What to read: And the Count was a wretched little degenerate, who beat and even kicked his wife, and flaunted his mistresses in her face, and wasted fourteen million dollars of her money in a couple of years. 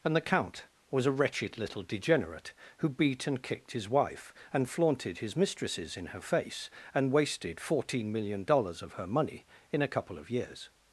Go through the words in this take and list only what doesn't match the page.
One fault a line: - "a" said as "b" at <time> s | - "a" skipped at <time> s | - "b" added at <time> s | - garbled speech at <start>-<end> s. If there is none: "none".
- "even" skipped at 3.4 s